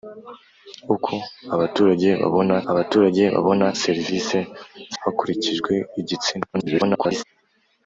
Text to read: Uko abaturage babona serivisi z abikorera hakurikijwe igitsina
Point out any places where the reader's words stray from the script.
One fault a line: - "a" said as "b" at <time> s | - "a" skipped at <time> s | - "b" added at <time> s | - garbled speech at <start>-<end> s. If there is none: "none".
- "abaturage babona" added at 2.7 s
- "abikorera" skipped at 4.9 s
- garbled speech at 6.5-7.2 s